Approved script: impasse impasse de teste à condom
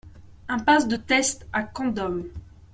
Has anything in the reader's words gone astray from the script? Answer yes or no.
yes